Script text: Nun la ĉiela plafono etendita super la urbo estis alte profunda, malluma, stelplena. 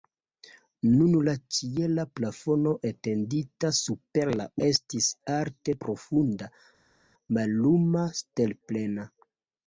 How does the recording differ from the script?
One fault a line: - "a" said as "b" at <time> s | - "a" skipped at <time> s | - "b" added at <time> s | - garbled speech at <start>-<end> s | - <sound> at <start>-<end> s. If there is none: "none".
- "urbo" skipped at 4.5 s